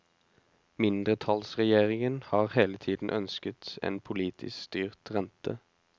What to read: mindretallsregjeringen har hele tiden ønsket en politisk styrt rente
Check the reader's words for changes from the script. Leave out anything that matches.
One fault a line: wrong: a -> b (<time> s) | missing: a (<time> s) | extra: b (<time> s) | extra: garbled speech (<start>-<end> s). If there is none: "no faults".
no faults